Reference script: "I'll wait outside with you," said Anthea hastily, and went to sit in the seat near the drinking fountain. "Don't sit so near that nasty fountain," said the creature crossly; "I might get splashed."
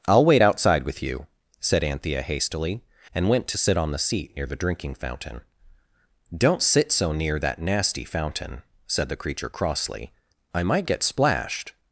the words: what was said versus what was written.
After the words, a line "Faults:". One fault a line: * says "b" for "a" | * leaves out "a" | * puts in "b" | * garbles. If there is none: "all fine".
"I'll wait outside with you," said Anthea hastily, and went to sit on the seat near the drinking fountain. "Don't sit so near that nasty fountain," said the creature crossly; "I might get splashed."
Faults:
* says "on" for "in"